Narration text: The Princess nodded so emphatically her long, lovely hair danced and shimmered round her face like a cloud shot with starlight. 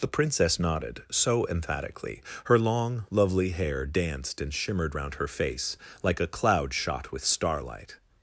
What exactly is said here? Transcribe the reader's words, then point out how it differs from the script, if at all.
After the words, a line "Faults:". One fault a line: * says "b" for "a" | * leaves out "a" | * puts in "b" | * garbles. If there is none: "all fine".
The Princess nodded so emphatically her long, lovely hair danced and shimmered round her face like a cloud shot with starlight.
Faults:
all fine